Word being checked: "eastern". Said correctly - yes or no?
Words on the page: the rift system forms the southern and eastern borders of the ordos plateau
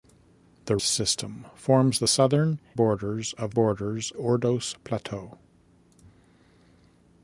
no